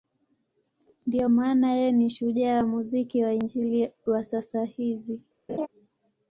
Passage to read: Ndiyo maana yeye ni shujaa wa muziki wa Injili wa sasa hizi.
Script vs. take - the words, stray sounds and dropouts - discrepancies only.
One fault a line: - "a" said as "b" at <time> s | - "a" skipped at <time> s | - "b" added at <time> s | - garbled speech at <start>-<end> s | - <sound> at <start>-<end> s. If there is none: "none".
- laugh at 5.5-5.7 s